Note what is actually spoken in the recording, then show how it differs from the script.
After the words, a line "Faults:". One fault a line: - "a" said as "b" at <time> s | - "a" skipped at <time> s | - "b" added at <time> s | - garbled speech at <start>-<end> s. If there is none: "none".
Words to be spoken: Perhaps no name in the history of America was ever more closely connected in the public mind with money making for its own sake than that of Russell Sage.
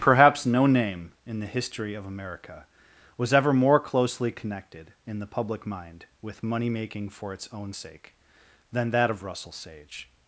Perhaps no name in the history of America was ever more closely connected in the public mind with money making for its own sake than that of Russell Sage.
Faults:
none